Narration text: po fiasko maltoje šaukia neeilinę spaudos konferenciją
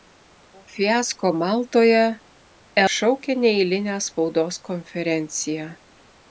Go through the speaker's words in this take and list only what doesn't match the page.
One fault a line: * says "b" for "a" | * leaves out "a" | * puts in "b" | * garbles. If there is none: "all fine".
all fine